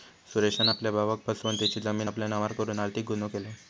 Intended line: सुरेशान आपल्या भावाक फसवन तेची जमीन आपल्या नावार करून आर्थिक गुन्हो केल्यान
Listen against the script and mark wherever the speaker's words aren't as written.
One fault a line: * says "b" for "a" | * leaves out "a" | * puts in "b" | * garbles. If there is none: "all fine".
all fine